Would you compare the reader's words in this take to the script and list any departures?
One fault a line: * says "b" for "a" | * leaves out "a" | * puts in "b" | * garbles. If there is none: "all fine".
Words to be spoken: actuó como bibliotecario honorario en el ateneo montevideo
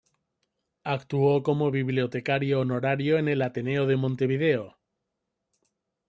* puts in "de"